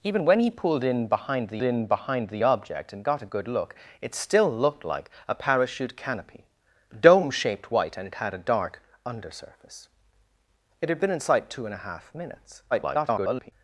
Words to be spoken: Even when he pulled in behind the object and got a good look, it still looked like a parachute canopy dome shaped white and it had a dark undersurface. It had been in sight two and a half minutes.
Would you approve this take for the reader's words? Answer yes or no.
no